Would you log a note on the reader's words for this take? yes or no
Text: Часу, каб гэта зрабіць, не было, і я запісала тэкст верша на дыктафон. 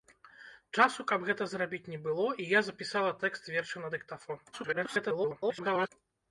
yes